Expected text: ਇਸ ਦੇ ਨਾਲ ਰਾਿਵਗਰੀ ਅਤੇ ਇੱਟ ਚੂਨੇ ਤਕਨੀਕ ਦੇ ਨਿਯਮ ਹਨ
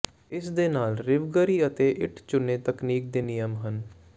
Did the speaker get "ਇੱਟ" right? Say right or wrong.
right